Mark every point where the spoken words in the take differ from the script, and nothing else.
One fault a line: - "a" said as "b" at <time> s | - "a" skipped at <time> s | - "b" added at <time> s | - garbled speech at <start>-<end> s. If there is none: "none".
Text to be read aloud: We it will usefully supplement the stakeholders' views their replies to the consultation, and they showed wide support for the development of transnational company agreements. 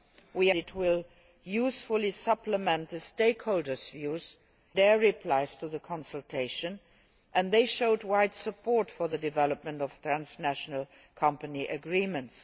none